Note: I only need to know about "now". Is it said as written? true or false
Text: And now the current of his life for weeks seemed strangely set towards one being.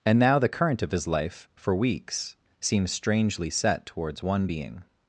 true